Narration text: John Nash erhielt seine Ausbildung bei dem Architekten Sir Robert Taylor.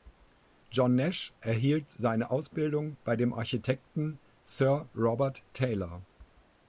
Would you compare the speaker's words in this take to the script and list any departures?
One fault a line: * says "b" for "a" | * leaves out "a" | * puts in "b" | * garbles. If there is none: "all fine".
all fine